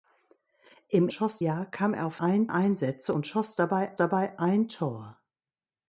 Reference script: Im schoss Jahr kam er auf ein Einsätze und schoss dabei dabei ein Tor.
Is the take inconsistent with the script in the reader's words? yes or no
no